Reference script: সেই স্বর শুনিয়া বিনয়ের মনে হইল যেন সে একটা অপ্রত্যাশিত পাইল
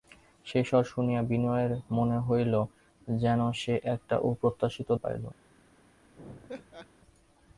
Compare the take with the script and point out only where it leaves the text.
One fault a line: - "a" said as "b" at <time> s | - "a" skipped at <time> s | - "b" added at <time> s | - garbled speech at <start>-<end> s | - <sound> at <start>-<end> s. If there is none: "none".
- laugh at 6.1-6.9 s